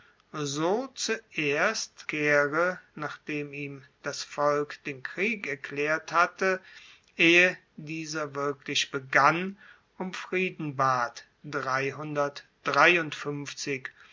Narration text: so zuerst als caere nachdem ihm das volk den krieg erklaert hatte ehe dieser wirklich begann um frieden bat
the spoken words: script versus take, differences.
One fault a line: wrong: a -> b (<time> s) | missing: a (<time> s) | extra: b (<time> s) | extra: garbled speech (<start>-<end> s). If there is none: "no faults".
missing: als (2.1 s)